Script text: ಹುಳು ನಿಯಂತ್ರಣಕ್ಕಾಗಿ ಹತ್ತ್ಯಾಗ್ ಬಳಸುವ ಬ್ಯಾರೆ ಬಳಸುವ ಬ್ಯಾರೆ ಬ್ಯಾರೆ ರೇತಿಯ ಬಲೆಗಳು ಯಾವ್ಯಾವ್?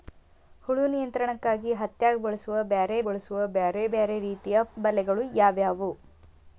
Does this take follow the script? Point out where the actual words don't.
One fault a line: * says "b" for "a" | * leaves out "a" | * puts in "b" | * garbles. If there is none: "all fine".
all fine